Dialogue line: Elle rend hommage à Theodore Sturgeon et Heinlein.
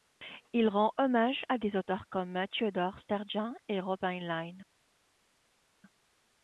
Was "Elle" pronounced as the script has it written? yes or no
no